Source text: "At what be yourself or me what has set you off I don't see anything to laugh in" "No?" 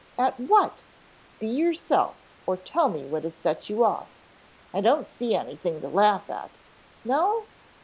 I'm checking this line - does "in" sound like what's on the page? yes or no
no